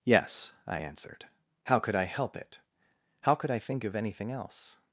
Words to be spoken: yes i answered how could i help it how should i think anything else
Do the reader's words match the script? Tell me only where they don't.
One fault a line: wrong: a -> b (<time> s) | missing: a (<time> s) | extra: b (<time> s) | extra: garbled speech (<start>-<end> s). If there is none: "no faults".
wrong: should -> could (3.3 s)
extra: of (3.8 s)